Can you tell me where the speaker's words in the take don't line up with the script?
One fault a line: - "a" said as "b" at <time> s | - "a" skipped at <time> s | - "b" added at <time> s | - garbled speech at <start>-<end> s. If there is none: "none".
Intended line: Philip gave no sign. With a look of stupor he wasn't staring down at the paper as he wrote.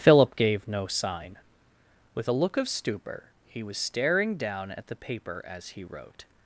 - "wasn't" said as "was" at 3.6 s